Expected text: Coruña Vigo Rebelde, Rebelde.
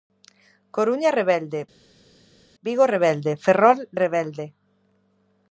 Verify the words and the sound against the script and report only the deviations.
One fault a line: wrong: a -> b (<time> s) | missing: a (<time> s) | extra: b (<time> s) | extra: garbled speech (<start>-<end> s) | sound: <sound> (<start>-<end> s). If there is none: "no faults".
extra: Rebelde (1.2 s)
extra: Ferrol (3.4 s)